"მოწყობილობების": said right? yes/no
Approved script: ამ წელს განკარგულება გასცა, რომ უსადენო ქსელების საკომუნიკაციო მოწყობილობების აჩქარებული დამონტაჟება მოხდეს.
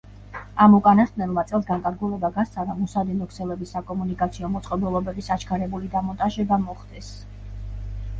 yes